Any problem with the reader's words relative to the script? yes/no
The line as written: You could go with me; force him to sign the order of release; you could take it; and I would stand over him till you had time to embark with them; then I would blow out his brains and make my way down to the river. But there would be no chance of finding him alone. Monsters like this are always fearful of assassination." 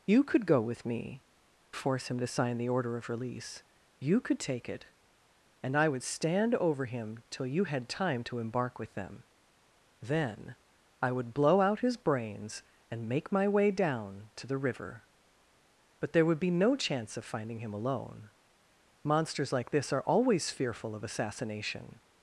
no